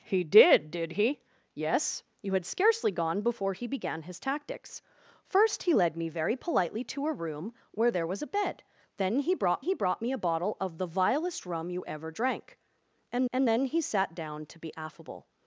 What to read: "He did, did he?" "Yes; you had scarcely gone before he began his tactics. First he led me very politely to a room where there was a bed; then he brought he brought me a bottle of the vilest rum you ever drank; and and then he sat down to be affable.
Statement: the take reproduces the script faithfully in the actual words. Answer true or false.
true